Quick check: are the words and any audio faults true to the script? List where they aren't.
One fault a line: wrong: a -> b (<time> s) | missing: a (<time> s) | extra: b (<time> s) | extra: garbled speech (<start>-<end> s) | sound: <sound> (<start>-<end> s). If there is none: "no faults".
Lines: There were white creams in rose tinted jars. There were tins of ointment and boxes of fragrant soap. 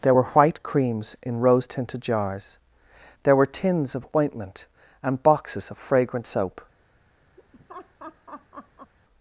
sound: laugh (7.4-8.9 s)